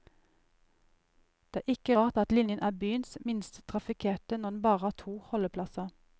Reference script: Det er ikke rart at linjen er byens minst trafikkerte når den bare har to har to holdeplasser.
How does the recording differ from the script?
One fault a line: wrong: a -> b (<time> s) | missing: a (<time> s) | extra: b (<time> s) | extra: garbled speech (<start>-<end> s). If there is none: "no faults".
missing: har to (5.2 s)